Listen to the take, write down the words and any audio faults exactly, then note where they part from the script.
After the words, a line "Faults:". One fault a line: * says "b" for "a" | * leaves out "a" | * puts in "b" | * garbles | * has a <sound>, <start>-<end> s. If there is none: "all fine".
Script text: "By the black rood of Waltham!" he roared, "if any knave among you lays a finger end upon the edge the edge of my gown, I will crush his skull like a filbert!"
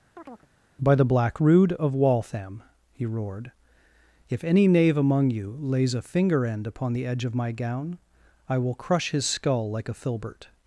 "By the black rood of Waltham!" he roared, "if any knave among you lays a finger end upon the edge of my gown, I will crush his skull like a filbert!"
Faults:
* has a chirp, 0.2-0.5 s
* leaves out "the edge"